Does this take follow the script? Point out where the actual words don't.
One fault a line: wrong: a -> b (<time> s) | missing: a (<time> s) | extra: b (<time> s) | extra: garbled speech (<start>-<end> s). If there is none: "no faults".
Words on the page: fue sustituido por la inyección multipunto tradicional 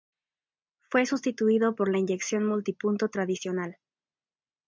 no faults